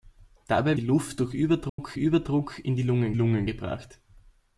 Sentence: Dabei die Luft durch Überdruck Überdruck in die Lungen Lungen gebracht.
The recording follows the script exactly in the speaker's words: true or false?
true